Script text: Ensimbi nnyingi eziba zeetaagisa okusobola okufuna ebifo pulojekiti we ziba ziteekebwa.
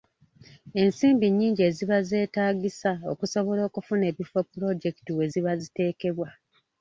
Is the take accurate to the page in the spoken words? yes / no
yes